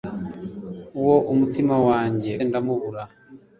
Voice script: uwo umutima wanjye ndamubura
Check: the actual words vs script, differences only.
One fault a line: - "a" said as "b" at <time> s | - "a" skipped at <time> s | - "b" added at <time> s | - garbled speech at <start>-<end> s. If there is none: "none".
none